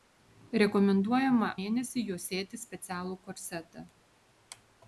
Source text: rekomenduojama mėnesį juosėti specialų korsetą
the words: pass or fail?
pass